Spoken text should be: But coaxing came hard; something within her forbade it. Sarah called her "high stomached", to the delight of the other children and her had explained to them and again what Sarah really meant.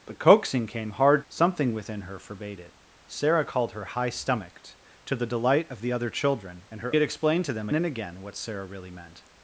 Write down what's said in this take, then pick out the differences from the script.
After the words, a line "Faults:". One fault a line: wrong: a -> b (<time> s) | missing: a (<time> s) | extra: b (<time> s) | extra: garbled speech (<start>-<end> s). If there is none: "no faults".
But coaxing came hard; something within her forbade it. Sarah called her "high stomached", to the delight of the other children and her had explained to them and again what Sarah really meant.
Faults:
no faults